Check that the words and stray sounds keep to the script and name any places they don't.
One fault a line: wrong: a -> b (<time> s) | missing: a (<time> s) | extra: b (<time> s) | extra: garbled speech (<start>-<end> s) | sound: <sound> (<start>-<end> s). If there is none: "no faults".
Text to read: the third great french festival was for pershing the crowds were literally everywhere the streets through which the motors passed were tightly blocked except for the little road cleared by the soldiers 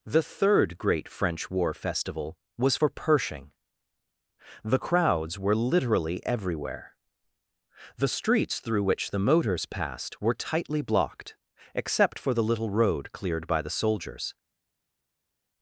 extra: war (1.5 s)